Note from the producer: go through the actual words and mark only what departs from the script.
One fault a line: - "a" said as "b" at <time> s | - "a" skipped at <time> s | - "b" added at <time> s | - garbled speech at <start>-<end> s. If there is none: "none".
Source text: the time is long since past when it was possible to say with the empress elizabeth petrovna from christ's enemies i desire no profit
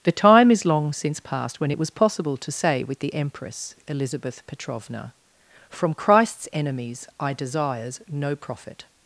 - "desire" said as "desires" at 7.3 s